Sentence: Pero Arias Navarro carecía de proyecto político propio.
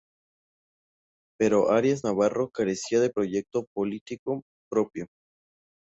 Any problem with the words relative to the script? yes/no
no